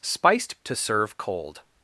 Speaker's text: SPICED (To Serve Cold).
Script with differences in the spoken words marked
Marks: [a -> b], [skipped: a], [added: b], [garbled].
SPICED (To Serve Cold).